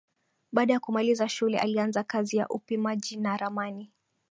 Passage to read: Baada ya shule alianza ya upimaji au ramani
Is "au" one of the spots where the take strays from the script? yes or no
yes